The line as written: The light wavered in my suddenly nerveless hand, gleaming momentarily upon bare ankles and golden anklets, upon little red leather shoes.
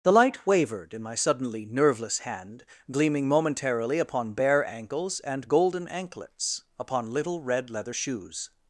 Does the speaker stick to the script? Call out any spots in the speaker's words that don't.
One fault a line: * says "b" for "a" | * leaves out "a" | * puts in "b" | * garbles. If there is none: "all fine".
all fine